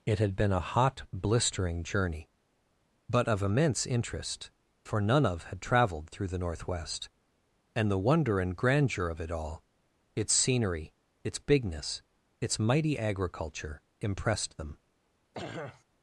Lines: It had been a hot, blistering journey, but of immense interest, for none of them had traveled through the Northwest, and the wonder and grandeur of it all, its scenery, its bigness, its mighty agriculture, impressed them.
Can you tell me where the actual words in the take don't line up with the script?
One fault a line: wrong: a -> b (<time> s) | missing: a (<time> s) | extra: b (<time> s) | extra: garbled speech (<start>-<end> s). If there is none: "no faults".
missing: them (5.5 s)